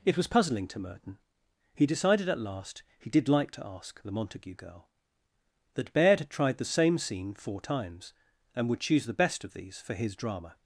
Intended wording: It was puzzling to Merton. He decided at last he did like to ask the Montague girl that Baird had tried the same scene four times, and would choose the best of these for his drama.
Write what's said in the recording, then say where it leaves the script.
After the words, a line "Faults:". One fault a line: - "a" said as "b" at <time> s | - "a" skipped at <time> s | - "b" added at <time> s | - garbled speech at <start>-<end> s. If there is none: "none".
It was puzzling to Merton. He decided at last he did like to ask the Montague girl that Baird had tried the same scene four times, and would choose the best of these for his drama.
Faults:
none